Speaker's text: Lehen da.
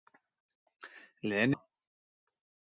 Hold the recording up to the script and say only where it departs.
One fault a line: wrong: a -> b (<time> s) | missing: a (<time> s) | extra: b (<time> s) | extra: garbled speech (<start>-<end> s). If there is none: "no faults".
no faults